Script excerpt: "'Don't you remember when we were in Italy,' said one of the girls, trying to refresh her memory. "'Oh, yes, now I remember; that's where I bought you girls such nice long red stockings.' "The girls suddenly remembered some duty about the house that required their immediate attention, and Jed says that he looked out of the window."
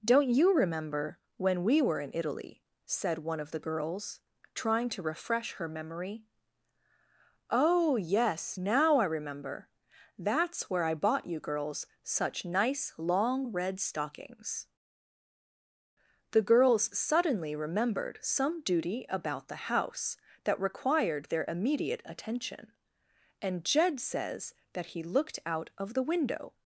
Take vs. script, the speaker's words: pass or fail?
pass